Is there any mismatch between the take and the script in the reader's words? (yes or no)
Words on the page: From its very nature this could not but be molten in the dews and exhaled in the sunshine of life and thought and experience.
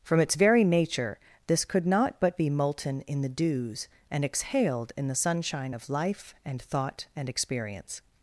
no